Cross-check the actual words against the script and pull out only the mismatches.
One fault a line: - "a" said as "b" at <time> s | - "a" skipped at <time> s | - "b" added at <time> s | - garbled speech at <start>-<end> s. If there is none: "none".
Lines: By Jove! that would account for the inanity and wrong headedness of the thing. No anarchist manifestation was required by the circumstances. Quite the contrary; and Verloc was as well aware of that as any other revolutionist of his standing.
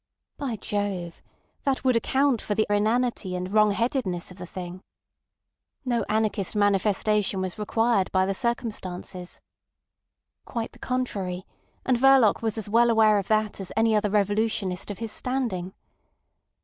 none